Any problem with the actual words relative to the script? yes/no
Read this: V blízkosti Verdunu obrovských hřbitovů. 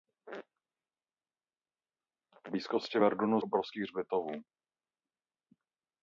no